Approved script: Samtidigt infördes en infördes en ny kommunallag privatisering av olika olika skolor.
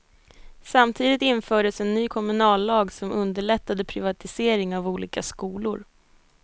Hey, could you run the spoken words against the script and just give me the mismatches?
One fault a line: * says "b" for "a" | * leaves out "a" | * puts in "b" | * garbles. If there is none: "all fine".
* says "ny kommunallag som underlättade" for "infördes en ny kommunallag"
* leaves out "olika"